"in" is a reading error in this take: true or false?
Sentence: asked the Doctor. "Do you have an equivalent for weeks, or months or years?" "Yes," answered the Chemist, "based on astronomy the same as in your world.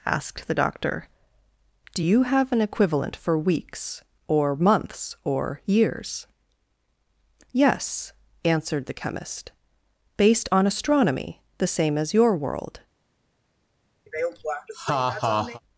true